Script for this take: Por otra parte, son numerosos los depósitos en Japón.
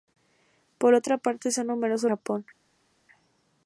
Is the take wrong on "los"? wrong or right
wrong